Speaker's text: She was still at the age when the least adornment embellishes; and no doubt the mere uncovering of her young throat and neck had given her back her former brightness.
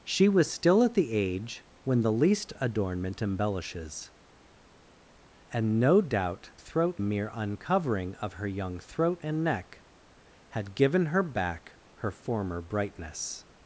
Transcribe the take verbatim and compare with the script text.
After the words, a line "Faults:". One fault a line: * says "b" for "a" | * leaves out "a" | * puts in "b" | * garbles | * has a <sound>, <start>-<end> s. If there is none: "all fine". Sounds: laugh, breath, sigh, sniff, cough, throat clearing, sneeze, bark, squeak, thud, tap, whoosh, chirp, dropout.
She was still at the age when the least adornment embellishes; and no doubt throat mere uncovering of her young throat and neck had given her back her former brightness.
Faults:
* says "throat" for "the"